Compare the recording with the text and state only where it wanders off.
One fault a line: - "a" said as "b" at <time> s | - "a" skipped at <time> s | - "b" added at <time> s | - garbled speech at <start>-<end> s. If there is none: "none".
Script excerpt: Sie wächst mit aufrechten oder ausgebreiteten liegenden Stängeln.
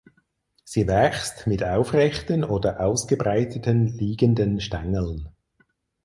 none